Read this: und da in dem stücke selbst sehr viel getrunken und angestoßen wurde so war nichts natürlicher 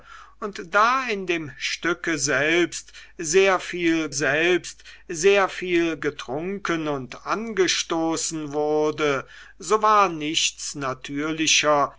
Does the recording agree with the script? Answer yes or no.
no